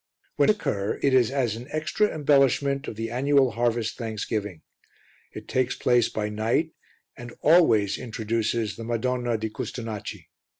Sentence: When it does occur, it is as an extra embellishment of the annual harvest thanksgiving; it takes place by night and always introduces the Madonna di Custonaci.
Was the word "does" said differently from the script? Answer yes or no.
yes